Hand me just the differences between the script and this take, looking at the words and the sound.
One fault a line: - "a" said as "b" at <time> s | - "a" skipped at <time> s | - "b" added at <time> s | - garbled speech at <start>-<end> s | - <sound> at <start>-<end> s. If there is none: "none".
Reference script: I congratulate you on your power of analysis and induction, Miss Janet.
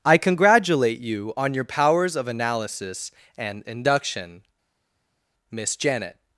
- "power" said as "powers" at 1.6 s